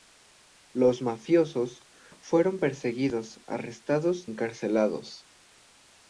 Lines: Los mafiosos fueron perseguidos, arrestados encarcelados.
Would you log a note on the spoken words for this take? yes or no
no